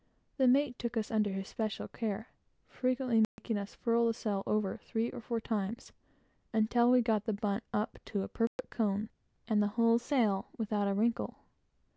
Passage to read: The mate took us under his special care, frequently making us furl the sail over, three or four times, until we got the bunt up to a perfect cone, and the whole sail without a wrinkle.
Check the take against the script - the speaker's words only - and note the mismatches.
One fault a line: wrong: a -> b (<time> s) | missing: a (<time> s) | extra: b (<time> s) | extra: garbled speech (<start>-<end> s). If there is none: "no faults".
no faults